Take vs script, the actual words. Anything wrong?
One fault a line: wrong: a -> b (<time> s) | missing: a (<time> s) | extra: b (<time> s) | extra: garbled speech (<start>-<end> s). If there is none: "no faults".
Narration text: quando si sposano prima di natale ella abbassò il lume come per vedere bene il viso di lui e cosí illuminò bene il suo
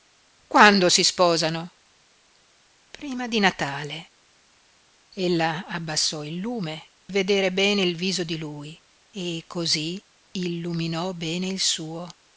missing: come per (6.9 s)